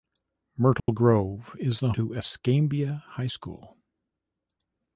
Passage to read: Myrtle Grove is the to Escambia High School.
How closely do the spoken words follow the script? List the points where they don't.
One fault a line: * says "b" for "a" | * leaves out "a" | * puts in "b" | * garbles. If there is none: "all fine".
all fine